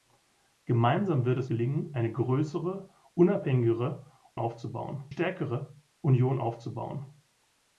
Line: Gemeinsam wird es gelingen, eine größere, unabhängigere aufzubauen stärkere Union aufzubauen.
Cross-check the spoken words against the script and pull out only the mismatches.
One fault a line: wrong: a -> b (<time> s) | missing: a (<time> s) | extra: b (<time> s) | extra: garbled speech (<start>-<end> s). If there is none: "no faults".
no faults